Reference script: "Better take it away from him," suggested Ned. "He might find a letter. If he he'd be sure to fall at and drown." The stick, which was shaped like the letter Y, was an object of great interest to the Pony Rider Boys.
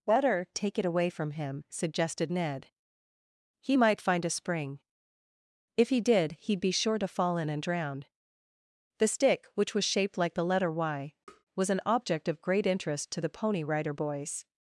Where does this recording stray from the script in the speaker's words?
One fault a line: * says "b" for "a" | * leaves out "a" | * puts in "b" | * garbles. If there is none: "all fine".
* says "spring" for "letter"
* puts in "did"
* says "in" for "at"